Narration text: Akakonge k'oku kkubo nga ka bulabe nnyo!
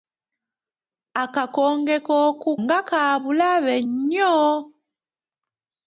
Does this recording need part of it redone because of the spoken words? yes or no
yes